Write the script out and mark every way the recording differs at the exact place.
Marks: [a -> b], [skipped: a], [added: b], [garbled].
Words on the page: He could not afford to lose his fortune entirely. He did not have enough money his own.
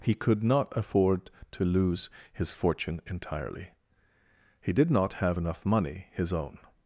He could not afford to lose his fortune entirely. He did not have enough money his own.